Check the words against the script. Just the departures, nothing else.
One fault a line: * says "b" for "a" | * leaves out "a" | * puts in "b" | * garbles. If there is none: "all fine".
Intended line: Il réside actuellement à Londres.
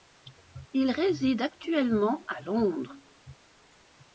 all fine